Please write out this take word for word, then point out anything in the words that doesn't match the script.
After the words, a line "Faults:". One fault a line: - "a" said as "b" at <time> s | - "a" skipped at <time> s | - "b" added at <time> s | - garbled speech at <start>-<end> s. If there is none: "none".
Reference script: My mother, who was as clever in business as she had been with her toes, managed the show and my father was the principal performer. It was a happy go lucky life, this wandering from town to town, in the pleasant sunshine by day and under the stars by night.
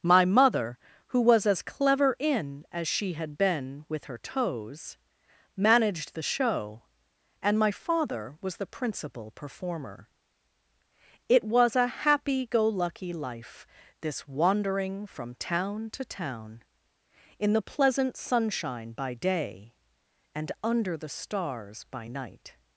My mother, who was as clever in as she had been with her toes, managed the show and my father was the principal performer. It was a happy go lucky life, this wandering from town to town, in the pleasant sunshine by day and under the stars by night.
Faults:
- "business" skipped at 2.6 s